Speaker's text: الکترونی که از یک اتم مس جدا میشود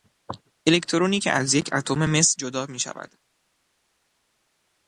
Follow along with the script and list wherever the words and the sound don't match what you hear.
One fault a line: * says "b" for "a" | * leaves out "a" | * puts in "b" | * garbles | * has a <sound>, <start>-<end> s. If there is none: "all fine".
all fine